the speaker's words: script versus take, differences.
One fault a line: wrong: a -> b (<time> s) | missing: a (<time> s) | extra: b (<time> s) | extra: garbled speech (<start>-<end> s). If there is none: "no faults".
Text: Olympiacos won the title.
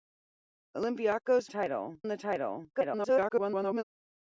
wrong: won -> title (1.5 s)
extra: garbled speech (2.7-3.8 s)